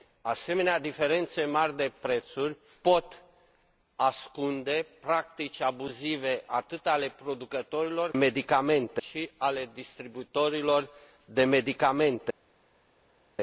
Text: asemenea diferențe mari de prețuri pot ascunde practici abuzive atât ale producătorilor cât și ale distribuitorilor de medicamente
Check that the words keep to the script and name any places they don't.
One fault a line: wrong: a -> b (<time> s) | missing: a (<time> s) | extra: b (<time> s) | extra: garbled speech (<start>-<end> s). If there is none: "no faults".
wrong: cât -> medicamente (8.1 s)